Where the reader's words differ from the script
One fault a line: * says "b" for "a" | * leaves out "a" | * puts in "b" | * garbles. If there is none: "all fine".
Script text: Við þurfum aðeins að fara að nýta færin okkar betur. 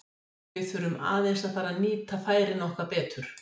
all fine